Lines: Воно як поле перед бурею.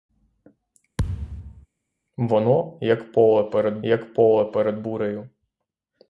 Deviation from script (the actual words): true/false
true